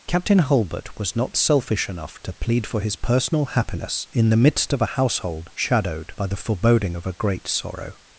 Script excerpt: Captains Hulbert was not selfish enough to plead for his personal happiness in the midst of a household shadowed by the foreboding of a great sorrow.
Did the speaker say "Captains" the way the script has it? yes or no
no